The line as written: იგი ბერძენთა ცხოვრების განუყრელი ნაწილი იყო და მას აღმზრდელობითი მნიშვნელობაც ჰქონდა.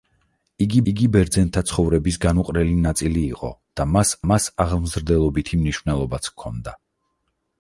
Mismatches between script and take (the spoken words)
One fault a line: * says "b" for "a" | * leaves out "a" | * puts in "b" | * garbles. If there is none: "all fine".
* puts in "იგი"
* puts in "მას"